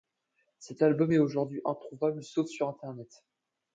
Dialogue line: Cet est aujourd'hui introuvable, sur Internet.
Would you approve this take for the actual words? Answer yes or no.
no